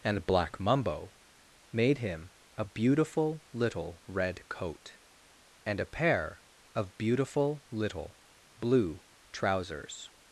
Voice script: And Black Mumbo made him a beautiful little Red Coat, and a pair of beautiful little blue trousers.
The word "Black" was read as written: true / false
true